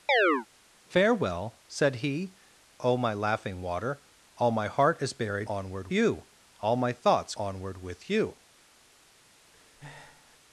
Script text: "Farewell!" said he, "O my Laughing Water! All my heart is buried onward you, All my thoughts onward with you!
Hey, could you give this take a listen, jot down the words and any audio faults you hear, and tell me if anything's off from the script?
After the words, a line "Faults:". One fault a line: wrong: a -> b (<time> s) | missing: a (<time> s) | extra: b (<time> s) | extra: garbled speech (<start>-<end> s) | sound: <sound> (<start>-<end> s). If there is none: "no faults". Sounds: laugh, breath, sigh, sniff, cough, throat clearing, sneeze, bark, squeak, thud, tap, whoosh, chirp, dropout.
"Farewell!" said he, "O my Laughing Water! All my heart is buried onward you, All my thoughts onward with you!
Faults:
sound: chirp (0.1-0.5 s)
sound: breath (9.5-10.4 s)